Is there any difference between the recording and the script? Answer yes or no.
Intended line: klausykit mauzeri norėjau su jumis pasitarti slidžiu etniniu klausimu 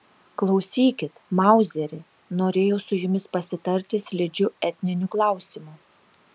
no